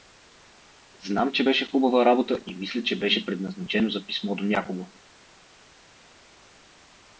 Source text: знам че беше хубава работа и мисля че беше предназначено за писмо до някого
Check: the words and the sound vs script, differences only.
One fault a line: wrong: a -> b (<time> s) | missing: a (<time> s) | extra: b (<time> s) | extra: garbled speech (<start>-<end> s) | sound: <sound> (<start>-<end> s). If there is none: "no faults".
no faults